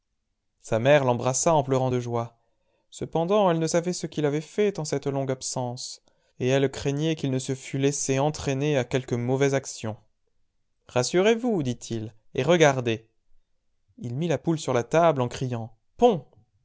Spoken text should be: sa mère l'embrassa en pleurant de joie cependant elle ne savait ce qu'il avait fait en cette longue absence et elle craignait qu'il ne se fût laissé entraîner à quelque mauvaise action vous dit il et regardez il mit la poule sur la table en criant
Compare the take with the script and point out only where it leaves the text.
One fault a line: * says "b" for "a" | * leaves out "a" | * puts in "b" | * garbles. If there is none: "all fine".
* puts in "rassurez"